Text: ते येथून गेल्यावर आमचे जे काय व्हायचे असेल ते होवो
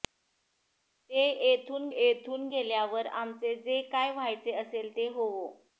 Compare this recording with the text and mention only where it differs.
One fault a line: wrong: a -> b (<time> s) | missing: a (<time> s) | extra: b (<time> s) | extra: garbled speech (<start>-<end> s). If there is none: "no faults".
extra: येथून (2.0 s)